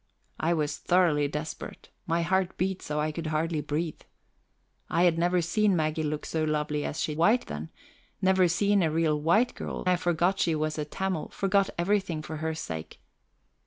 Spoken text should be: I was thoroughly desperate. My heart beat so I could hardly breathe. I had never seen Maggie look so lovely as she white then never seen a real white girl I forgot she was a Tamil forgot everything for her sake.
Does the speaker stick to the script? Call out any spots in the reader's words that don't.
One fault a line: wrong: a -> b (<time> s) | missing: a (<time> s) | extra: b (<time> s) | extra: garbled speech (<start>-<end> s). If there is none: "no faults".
no faults